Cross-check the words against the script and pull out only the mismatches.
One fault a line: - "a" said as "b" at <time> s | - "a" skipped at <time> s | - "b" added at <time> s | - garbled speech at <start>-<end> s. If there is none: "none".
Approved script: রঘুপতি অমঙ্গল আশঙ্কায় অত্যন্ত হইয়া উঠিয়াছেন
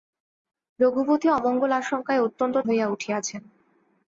none